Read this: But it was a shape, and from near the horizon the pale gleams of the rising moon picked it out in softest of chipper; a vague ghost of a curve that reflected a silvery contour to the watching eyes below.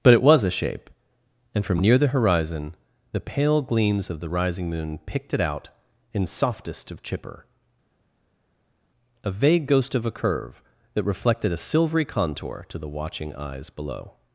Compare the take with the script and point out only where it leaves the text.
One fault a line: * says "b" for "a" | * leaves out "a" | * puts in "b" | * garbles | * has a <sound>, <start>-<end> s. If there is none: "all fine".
all fine